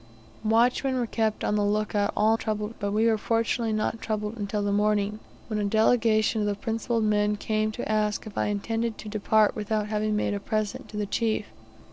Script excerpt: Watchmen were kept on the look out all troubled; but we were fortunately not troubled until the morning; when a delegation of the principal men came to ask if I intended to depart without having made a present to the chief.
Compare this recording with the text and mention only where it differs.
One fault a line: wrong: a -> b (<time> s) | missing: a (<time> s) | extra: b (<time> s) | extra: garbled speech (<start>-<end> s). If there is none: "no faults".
no faults